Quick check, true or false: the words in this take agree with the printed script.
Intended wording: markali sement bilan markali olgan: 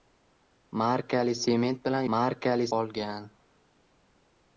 true